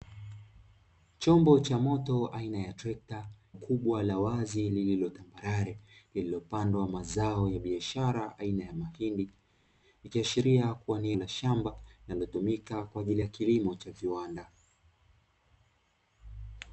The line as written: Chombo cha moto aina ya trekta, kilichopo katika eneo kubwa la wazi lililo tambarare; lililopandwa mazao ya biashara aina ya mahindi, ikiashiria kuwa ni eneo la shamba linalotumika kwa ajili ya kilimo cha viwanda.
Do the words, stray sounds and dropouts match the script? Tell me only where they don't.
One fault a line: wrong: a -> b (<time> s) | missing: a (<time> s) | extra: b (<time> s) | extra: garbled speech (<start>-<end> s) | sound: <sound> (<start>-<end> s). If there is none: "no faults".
missing: kilichopo katika eneo (3.3 s)
missing: eneo (11.1 s)